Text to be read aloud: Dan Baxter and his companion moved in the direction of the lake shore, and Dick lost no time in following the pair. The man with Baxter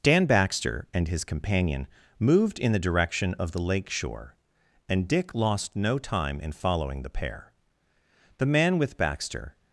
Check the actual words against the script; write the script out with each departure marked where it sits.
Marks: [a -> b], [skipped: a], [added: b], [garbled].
Dan Baxter and his companion moved in the direction of the lake shore, and Dick lost no time in following the pair. The man with Baxter